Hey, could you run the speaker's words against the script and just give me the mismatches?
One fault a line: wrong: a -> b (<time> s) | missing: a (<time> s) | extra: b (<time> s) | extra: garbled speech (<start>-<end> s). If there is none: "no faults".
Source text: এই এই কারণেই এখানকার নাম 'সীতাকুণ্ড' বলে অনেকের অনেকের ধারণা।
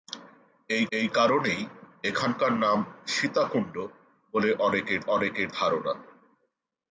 no faults